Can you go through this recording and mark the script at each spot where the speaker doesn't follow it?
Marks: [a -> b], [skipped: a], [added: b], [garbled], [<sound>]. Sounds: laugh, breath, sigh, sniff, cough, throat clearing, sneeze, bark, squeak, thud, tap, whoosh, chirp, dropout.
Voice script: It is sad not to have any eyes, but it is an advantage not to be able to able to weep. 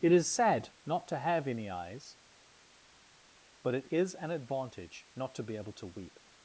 It is sad not to have any eyes, but it is an advantage not to be able to [skipped: able to] weep.